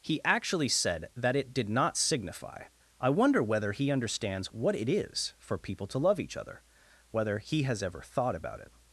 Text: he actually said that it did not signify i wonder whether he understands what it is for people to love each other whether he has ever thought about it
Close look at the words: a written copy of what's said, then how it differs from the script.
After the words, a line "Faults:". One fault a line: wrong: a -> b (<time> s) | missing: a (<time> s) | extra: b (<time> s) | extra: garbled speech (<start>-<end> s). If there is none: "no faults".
he actually said that it did not signify i wonder whether he understands what it is for people to love each other whether he has ever thought about it
Faults:
no faults